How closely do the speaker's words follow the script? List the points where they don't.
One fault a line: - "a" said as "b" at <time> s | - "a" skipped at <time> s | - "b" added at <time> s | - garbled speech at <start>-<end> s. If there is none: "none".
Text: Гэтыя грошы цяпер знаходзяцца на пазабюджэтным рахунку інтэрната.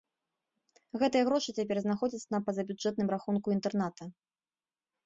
none